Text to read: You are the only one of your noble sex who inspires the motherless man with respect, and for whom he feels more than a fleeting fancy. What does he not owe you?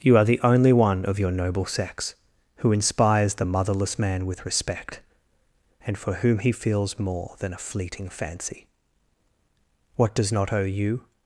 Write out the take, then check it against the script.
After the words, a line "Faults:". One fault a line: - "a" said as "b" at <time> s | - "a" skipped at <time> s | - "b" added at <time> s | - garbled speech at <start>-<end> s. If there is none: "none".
You are the only one of your noble sex who inspires the motherless man with respect, and for whom he feels more than a fleeting fancy. What does not owe you?
Faults:
- "he" skipped at 10.3 s